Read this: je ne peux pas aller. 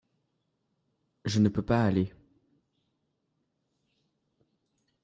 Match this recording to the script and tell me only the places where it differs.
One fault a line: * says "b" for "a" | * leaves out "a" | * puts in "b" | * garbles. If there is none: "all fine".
all fine